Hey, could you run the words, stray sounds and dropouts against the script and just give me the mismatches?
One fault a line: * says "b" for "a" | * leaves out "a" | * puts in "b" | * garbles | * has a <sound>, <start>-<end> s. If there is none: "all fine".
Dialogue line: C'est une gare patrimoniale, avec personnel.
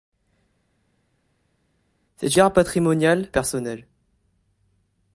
* leaves out "une"
* leaves out "avec"